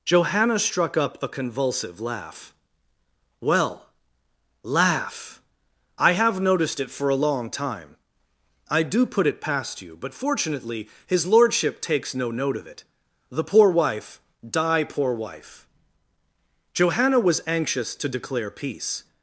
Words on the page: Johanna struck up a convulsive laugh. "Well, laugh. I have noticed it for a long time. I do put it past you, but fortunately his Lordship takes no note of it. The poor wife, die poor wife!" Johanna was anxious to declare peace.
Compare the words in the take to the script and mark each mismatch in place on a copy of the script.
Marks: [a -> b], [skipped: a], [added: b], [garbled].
Johanna struck up a convulsive laugh. "Well, laugh. I have noticed it for a long time. I do put it past you, but fortunately his Lordship takes no note of it. The poor wife, die poor wife!" Johanna was anxious to declare peace.